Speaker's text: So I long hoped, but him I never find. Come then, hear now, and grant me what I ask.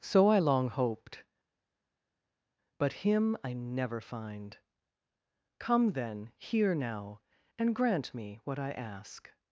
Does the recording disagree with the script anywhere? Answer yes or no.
no